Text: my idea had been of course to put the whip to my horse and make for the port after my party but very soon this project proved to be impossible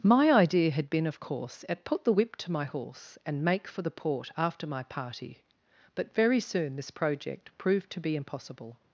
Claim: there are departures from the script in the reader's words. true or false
true